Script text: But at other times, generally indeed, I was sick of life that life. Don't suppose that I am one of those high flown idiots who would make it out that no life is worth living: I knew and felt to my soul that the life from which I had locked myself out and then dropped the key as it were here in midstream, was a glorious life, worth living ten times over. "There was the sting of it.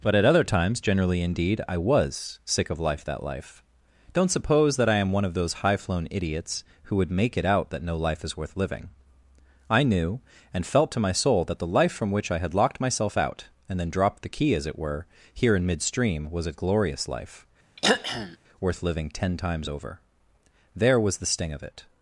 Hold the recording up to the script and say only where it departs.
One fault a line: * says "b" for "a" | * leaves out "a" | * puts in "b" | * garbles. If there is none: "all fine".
all fine